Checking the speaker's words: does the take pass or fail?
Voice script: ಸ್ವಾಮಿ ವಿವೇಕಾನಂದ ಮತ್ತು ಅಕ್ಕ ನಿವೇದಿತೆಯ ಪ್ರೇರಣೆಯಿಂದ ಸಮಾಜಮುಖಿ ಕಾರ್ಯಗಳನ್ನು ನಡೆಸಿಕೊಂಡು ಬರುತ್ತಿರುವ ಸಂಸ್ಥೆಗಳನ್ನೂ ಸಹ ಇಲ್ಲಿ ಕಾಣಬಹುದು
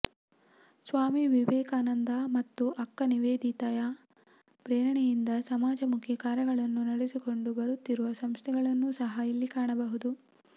pass